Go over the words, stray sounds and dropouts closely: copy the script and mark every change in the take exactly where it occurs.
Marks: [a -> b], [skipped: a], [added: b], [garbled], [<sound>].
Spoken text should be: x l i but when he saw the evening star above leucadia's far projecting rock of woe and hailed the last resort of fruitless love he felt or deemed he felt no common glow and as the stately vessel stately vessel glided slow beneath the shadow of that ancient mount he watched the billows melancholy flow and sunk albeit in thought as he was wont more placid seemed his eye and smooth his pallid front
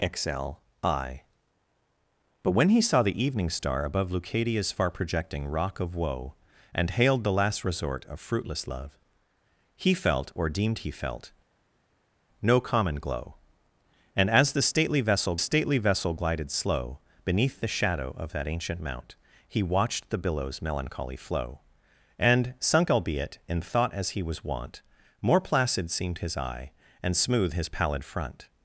x l i but when he saw the evening star above leucadia's far projecting rock of woe and hailed the last resort of fruitless love he felt or deemed he felt no common glow and as the stately vessel stately vessel glided slow beneath the shadow of that ancient mount he watched the billows melancholy flow and sunk albeit in thought as he was wont more placid seemed his eye and smooth his pallid front